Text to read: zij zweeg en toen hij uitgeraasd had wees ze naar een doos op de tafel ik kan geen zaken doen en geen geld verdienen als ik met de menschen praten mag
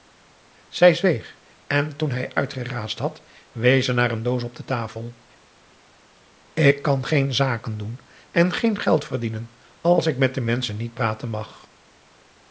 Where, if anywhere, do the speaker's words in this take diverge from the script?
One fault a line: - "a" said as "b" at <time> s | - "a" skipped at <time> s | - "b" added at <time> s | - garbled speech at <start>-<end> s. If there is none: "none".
- "niet" added at 10.8 s